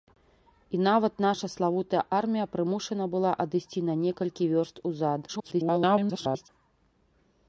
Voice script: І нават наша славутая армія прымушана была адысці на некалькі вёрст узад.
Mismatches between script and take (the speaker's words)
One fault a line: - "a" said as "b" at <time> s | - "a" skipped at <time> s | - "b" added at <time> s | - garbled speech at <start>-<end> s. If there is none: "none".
- garbled speech at 5.3-6.5 s